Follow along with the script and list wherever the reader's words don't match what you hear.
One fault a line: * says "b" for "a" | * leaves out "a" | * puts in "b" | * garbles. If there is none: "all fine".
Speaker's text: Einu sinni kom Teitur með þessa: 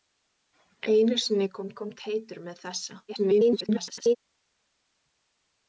* puts in "kom"
* garbles